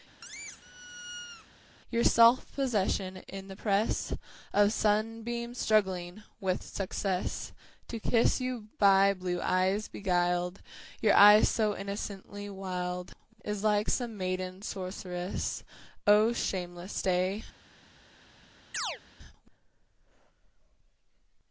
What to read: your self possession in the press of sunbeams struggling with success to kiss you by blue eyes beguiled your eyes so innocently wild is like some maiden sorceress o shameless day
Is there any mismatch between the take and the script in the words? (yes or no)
no